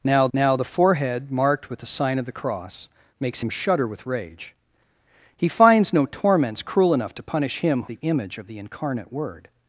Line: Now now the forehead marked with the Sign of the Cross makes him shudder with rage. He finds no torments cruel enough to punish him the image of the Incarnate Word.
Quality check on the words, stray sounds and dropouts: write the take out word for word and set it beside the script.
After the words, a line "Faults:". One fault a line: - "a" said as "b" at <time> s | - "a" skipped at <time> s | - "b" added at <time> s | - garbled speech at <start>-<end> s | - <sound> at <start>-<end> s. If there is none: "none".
Now now the forehead marked with the Sign of the Cross makes him shudder with rage. He finds no torments cruel enough to punish him the image of the Incarnate Word.
Faults:
none